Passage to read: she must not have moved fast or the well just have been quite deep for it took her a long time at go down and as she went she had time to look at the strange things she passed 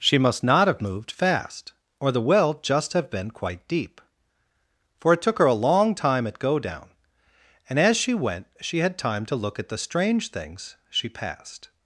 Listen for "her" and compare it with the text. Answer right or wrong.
right